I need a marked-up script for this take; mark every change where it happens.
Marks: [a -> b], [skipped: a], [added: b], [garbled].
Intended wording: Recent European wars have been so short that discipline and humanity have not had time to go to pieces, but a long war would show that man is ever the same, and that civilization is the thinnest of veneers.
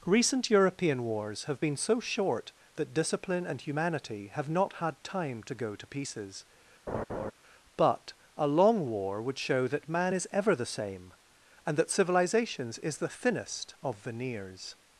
Recent European wars have been so short that discipline and humanity have not had time to go to pieces, but a long war would show that man is ever the same, and that [civilization -> civilizations] is the thinnest of veneers.